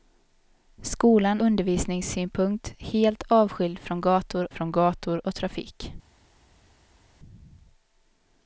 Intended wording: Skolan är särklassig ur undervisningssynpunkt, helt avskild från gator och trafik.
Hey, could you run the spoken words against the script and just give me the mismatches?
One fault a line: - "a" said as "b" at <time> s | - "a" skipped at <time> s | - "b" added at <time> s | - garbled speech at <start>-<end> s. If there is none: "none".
- "är särklassig ur" skipped at 1.4 s
- "från gator" added at 4.5 s